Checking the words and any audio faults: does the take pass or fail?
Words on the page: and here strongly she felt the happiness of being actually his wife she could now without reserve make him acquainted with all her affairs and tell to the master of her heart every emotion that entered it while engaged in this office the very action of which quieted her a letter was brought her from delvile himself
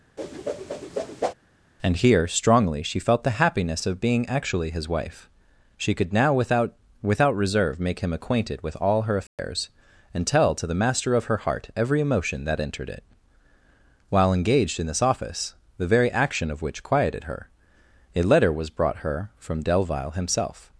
fail